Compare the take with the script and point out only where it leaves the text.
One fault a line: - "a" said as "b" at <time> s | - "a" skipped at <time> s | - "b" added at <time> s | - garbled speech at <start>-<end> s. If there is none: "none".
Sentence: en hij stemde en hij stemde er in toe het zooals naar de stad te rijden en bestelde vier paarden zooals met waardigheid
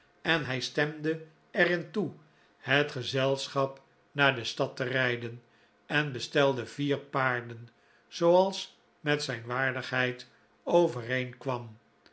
- "en hij stemde" skipped at 1.3 s
- "zooals" said as "gezelschap" at 2.9 s
- "zijn" added at 9.2 s